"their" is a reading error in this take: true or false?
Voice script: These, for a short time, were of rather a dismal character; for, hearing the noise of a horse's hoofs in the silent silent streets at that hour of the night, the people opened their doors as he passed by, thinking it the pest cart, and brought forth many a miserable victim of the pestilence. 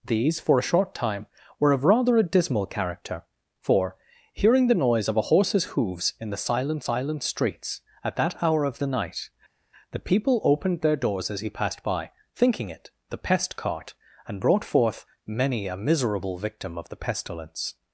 false